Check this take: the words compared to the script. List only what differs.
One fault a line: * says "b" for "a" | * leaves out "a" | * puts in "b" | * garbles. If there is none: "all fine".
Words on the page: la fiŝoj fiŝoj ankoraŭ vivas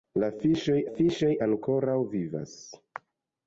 all fine